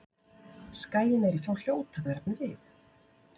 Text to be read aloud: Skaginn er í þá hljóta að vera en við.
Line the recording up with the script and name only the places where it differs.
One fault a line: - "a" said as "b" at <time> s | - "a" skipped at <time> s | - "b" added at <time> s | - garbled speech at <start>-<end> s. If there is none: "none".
none